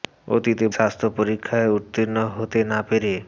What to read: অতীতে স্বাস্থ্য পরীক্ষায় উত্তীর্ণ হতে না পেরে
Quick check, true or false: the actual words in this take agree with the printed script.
true